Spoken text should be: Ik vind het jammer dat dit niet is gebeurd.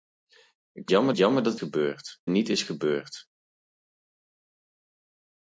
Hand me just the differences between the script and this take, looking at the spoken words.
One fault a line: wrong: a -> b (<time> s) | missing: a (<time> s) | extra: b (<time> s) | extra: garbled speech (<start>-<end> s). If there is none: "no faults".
wrong: vind -> jammer (0.9 s)
wrong: dit -> gebeurd (1.5 s)